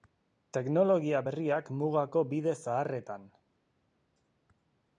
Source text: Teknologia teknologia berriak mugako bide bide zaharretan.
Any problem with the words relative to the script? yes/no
yes